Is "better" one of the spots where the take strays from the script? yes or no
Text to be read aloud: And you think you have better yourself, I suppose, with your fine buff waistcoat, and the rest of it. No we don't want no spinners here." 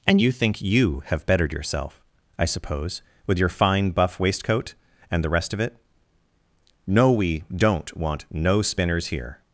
yes